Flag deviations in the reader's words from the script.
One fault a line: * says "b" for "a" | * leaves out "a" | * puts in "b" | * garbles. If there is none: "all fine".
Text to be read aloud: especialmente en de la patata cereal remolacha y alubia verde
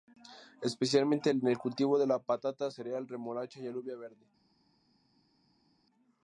* puts in "el cultivo"